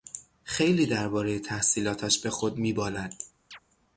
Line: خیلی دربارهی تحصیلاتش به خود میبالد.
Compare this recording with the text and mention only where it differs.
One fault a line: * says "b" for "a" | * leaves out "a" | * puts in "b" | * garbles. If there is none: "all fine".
all fine